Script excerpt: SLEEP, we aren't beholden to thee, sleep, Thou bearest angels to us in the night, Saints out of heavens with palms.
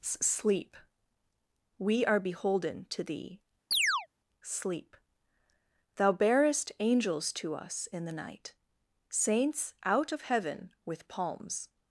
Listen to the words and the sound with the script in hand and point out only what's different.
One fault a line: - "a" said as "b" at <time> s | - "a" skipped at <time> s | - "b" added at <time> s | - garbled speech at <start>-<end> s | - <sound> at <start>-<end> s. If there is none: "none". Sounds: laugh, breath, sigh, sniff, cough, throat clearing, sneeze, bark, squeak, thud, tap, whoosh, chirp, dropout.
- "aren't" said as "are" at 2.1 s
- chirp at 3.7-4.1 s
- "heavens" said as "heaven" at 10.2 s